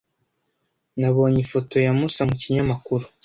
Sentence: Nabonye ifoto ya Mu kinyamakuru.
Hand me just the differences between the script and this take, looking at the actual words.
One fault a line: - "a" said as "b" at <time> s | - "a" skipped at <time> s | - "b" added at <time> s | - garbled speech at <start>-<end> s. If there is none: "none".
- "Musa" added at 2.0 s